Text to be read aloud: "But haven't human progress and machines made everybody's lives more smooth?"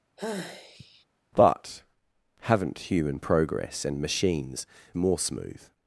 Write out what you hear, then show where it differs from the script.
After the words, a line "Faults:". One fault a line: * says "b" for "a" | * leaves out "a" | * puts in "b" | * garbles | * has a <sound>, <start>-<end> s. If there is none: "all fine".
"But haven't human progress and machines more smooth?"
Faults:
* has a sigh, 0.2-1.1 s
* leaves out "made everybody's lives"